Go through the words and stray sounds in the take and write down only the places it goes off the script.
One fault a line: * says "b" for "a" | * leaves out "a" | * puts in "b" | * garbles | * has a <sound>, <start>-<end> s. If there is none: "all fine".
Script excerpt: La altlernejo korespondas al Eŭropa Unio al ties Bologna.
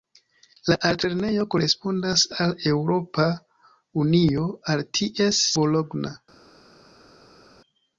all fine